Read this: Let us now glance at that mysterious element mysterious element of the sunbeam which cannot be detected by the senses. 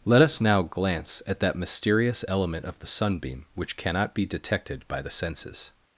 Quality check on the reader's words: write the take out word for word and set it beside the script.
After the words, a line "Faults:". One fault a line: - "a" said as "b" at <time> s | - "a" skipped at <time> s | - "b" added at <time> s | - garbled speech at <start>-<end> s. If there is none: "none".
Let us now glance at that mysterious element of the sunbeam which cannot be detected by the senses.
Faults:
- "mysterious element" skipped at 2.6 s